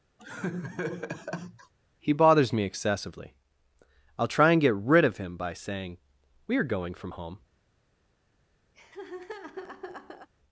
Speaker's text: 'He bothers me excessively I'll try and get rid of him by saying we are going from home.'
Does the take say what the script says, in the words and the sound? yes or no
no